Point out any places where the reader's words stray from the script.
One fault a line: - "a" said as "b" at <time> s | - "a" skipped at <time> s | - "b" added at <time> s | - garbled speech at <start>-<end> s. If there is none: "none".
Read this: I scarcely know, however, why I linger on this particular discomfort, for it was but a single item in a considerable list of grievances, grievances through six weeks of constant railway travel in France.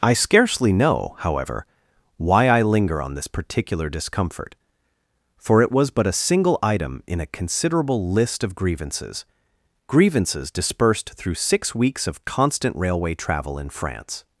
- "dispersed" added at 10.5 s